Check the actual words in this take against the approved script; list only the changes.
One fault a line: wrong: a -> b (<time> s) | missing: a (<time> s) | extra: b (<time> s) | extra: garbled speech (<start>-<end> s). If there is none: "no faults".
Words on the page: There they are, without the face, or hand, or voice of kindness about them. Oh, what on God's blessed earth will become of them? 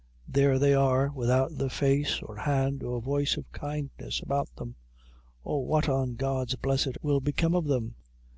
missing: earth (7.0 s)